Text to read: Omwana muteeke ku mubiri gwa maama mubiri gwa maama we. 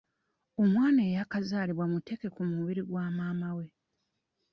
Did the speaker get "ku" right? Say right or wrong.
right